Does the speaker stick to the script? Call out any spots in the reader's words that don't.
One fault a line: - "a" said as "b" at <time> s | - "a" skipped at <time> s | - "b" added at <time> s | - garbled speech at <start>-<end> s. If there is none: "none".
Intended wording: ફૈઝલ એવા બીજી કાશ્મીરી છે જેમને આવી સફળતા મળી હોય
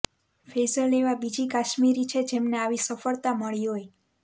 none